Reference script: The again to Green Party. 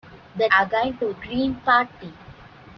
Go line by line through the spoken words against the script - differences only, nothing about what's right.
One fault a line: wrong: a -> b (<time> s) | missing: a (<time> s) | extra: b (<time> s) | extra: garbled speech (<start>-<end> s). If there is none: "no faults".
no faults